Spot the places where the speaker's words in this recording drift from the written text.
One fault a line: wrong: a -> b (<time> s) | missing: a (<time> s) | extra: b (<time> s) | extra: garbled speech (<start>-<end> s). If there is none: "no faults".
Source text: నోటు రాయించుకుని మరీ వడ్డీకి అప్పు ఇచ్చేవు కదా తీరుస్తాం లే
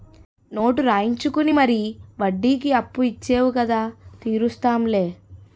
no faults